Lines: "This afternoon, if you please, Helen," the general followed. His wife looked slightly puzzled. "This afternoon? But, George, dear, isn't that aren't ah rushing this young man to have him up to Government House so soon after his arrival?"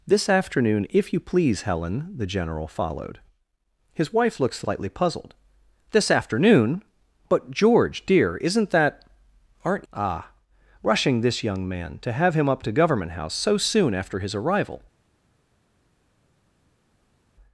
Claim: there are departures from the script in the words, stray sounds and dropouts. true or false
false